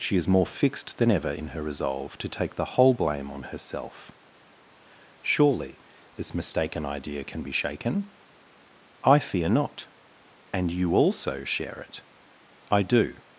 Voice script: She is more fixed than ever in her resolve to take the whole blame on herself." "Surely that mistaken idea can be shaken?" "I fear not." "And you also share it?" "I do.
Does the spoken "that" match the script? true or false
false